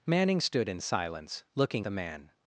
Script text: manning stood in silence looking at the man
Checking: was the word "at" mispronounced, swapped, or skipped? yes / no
yes